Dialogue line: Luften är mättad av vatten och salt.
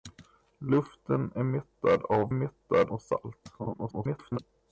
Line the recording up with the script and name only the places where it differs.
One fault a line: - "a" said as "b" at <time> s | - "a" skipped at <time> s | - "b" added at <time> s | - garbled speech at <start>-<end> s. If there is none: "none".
- "vatten" said as "mättad" at 2.3 s
- garbled speech at 3.6-4.4 s